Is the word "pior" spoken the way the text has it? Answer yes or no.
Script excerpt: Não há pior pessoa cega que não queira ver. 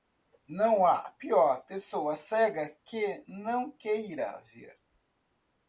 yes